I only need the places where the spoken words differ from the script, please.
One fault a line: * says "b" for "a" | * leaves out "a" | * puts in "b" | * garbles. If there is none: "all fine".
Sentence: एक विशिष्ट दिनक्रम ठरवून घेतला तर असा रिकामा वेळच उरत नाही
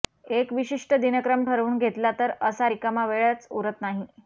all fine